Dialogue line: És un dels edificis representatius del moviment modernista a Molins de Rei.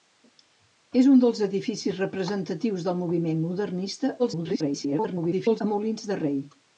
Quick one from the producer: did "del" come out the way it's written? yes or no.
yes